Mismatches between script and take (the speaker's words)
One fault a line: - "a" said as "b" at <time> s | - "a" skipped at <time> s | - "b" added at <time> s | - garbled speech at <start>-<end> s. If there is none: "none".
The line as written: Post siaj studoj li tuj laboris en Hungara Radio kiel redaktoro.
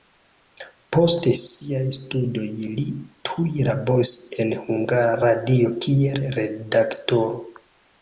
none